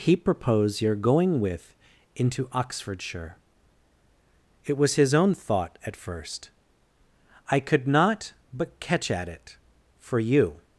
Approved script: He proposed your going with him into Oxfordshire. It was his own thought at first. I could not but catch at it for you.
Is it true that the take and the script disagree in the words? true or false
true